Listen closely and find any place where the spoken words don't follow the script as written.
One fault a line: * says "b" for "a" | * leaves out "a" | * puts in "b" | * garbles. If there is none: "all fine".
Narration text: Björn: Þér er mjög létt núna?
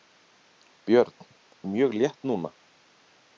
* leaves out "Þér"